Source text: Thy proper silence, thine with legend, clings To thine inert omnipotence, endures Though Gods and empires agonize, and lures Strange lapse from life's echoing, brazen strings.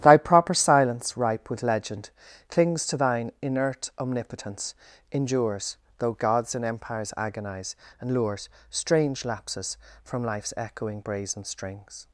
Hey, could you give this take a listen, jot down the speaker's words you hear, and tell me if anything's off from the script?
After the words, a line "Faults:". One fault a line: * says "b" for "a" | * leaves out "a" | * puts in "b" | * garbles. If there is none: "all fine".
Thy proper silence, ripe with legend, clings To thine inert omnipotence, endures Though Gods and empires agonize, and lures Strange lapses from life's echoing, brazen strings.
Faults:
* says "ripe" for "thine"
* says "lapses" for "lapse"